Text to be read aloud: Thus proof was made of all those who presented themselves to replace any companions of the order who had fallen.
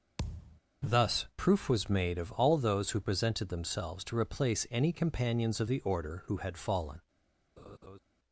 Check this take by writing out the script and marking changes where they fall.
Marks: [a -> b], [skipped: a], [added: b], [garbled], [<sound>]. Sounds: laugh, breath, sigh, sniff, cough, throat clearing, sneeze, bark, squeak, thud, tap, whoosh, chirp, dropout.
[thud] Thus proof was made of all those who presented themselves to replace any companions of the order who had fallen. [laugh]